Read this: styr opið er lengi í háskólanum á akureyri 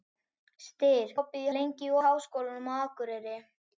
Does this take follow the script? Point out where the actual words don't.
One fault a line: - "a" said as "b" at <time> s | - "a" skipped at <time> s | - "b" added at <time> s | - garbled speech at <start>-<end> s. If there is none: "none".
none